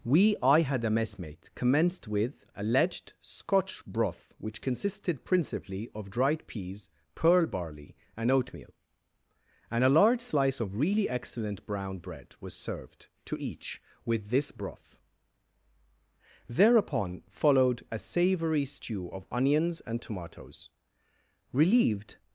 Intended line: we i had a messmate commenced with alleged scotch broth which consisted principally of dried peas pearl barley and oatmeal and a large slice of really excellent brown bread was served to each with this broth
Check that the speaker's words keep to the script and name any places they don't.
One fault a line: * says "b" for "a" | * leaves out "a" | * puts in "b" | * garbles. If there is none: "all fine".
* puts in "thereupon followed a savoury stew of onions and tomatoes relieved"